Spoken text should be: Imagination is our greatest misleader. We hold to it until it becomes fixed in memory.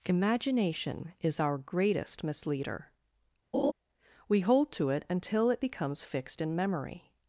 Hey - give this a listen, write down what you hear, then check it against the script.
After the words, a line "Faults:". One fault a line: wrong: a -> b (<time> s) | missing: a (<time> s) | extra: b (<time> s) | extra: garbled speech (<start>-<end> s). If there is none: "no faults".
Imagination is our greatest misleader. We hold to it until it becomes fixed in memory.
Faults:
no faults